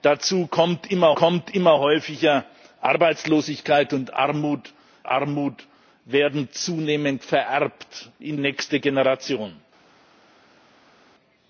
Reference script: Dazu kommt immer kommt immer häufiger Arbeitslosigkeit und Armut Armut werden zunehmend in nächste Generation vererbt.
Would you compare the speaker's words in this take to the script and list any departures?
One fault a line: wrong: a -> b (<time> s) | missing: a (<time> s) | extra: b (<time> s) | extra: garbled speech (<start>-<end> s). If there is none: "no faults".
no faults